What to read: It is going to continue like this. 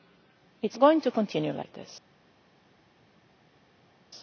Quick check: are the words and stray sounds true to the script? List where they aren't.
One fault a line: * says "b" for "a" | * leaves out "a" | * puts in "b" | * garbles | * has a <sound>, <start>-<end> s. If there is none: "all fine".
all fine